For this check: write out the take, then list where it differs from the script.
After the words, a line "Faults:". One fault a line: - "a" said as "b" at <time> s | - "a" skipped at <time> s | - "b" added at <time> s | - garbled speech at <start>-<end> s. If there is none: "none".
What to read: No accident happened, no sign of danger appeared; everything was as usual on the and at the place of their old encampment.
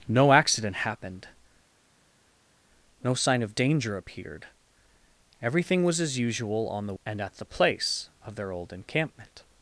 No accident happened, no sign of danger appeared; everything was as usual on the and at the place of their old encampment.
Faults:
none